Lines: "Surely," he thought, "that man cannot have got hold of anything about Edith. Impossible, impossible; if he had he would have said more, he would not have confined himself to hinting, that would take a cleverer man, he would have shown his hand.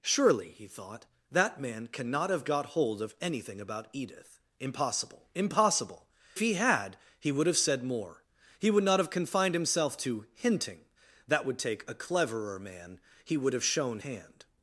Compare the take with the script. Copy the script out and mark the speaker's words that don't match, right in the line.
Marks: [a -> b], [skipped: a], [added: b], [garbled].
"Surely," he thought, "that man cannot have got hold of anything about Edith. Impossible, impossible; [skipped: if] he had he would have said more, he would not have confined himself to hinting, that would take a cleverer man, he would have shown [skipped: his] hand.